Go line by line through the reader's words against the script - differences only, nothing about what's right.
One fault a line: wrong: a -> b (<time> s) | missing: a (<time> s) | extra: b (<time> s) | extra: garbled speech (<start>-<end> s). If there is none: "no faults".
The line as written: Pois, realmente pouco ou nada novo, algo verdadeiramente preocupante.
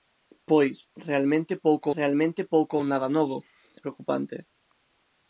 extra: realmente pouco (2.0 s)
missing: algo verdadeiramente (3.4 s)